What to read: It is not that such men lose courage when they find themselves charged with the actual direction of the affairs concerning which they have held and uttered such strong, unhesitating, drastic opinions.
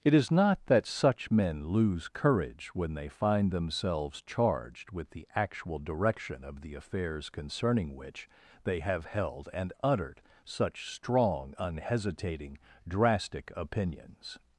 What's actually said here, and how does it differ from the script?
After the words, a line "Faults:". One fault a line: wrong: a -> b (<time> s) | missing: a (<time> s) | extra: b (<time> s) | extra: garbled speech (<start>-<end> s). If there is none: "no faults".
It is not that such men lose courage when they find themselves charged with the actual direction of the affairs concerning which they have held and uttered such strong, unhesitating, drastic opinions.
Faults:
no faults